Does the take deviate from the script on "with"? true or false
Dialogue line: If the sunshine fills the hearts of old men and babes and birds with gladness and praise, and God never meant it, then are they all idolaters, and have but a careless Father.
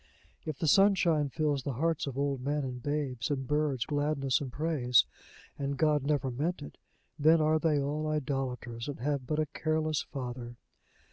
true